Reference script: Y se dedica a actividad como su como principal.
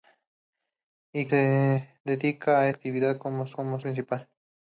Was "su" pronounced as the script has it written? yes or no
yes